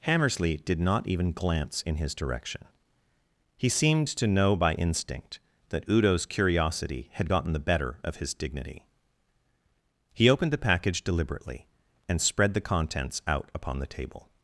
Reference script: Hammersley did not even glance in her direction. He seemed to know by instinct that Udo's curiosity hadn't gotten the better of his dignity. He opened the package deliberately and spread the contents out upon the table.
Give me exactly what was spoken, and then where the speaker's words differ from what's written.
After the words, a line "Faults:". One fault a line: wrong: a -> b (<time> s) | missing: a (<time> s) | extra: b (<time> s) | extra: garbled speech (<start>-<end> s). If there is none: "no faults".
Hammersley did not even glance in his direction. He seemed to know by instinct that Udo's curiosity had gotten the better of his dignity. He opened the package deliberately and spread the contents out upon the table.
Faults:
wrong: her -> his (1.9 s)
wrong: hadn't -> had (7.1 s)